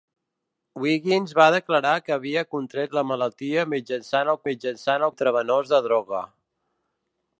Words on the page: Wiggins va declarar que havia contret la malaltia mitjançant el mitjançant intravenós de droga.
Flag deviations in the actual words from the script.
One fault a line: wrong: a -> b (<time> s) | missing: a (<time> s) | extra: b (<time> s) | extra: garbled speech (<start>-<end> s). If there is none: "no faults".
no faults